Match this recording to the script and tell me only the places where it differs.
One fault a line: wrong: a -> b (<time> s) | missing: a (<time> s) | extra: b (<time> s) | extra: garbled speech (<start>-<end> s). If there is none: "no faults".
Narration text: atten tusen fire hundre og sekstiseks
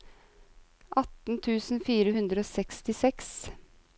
no faults